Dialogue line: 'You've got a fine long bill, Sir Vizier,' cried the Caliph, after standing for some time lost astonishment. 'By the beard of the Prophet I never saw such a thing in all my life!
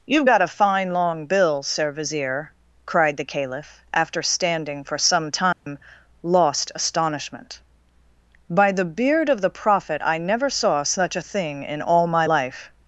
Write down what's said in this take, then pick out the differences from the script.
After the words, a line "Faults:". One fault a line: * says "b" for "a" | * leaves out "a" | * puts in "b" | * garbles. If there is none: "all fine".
'You've got a fine long bill, Sir Vizier,' cried the Caliph, after standing for some time lost astonishment. 'By the beard of the Prophet I never saw such a thing in all my life!
Faults:
all fine